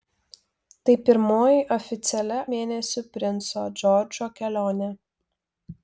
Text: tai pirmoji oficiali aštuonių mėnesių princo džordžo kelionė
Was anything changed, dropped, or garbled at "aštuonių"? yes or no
yes